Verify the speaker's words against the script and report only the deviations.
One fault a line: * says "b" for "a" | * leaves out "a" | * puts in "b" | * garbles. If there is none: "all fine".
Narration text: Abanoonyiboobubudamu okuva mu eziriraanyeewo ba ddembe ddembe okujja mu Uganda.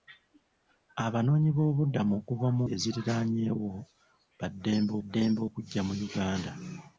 all fine